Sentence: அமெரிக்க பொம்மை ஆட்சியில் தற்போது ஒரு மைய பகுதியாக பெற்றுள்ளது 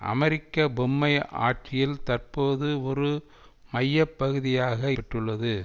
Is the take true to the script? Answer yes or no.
yes